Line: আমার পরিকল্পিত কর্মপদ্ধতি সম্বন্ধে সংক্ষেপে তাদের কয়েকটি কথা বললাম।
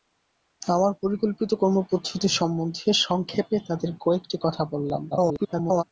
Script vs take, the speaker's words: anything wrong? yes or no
yes